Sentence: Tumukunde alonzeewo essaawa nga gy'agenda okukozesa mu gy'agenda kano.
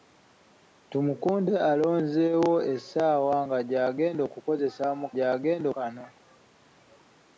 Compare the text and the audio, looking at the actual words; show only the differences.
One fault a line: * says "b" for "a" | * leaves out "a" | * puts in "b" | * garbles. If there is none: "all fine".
all fine